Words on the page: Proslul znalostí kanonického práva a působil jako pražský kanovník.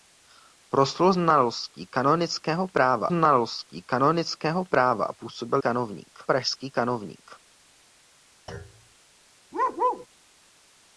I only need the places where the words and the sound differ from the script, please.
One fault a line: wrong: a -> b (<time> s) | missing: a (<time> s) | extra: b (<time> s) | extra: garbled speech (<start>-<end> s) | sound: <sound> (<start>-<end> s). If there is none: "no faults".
extra: znalostí kanonického práva (3.1 s)
wrong: jako -> kanovník (5.6 s)
sound: thud (8.5-9.0 s)
sound: bark (9.5-10.1 s)